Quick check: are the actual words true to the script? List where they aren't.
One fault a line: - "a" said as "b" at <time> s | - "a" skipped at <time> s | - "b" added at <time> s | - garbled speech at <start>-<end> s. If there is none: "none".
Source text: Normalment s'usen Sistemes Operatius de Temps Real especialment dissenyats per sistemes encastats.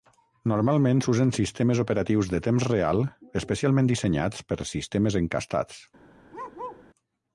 none